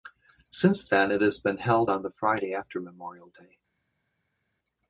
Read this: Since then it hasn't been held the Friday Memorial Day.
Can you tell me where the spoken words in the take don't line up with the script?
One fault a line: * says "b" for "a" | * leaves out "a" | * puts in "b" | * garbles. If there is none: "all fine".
* says "has" for "hasn't"
* puts in "on"
* puts in "after"